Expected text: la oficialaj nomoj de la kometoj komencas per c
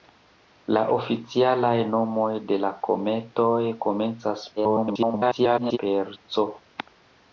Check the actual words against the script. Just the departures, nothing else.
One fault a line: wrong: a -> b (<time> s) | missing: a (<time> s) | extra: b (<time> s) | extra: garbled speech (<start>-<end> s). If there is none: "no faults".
extra: garbled speech (4.6-5.8 s)